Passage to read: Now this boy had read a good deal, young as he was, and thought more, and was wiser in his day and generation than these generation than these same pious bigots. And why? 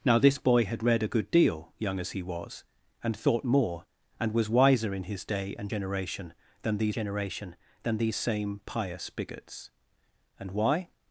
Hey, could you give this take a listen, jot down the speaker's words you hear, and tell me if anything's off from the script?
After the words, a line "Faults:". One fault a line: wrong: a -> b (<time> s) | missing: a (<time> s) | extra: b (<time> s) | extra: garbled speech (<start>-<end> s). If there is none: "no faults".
Now this boy had read a good deal, young as he was, and thought more, and was wiser in his day and generation than these generation than these same pious bigots. And why?
Faults:
no faults